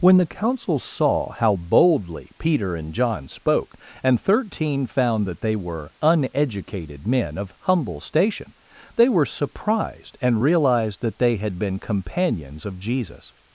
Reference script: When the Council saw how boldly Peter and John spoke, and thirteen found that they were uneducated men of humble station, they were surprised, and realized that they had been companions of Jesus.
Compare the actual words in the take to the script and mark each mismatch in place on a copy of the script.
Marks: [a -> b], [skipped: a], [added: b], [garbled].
When the Council saw how boldly Peter and John spoke, and thirteen found that they were uneducated men of humble station, they were surprised, and realized that they had been companions of Jesus.